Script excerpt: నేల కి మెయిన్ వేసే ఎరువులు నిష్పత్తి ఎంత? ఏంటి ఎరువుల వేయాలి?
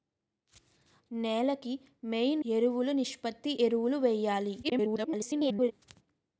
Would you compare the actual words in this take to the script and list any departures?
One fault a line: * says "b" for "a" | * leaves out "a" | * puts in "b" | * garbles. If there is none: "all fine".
* leaves out "వేసే"
* leaves out "ఎంత ఏంటి"
* garbles